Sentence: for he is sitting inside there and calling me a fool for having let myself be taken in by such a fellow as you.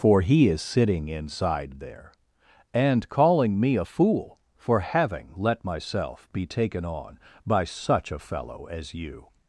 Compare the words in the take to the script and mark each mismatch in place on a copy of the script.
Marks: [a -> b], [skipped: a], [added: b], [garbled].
for he is sitting inside there and calling me a fool for having let myself be taken [in -> on] by such a fellow as you.